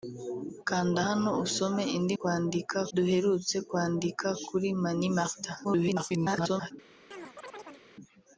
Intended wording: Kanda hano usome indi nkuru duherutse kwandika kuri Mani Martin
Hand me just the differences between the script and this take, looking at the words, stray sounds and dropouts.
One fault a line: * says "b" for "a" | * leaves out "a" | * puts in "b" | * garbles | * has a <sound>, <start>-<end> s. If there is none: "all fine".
* says "kwandika" for "nkuru"
* garbles
* has a chirp, 7.1-7.9 s